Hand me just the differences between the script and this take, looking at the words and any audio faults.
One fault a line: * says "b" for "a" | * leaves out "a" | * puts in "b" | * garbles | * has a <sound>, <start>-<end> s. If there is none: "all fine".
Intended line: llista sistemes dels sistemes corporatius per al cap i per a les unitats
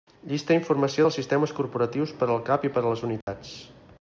* says "informació" for "sistemes"
* has a dropout, 3.2-3.3 s